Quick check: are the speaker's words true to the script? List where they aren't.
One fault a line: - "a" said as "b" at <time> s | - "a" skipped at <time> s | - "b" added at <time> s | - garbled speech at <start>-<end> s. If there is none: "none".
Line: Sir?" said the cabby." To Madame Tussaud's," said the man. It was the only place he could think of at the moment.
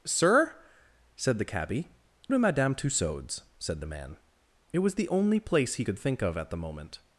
none